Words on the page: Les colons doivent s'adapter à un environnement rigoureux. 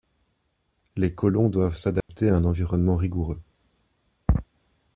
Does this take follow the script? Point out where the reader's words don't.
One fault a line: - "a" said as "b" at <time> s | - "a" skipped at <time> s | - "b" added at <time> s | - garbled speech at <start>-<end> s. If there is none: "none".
none